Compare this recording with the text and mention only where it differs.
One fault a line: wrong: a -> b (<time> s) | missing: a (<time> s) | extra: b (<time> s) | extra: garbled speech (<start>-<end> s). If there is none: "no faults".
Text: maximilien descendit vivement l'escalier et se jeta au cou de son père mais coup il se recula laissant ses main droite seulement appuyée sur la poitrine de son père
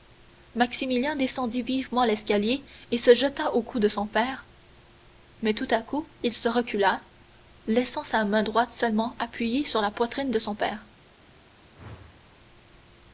extra: tout à (5.5 s)
wrong: ses -> sa (8.0 s)